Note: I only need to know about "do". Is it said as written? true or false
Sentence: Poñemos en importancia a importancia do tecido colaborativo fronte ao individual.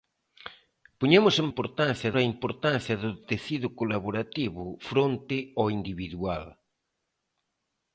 true